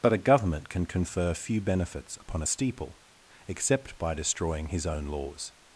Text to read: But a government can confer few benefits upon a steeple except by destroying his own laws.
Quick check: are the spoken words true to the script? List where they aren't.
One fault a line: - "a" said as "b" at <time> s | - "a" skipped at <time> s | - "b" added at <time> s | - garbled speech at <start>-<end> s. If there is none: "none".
none